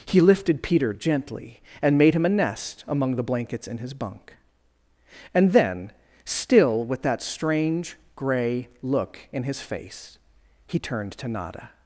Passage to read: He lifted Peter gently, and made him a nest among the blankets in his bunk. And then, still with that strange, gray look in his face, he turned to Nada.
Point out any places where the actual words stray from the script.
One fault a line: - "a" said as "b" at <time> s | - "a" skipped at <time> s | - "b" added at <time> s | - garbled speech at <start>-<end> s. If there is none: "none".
none